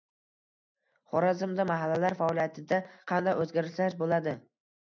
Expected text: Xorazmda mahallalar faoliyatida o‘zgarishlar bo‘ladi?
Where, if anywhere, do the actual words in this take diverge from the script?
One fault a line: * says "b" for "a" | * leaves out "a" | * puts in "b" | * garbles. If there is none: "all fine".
* puts in "qanday"